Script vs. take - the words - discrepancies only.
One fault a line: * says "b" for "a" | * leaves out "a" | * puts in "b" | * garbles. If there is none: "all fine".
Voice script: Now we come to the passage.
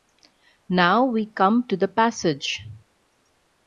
all fine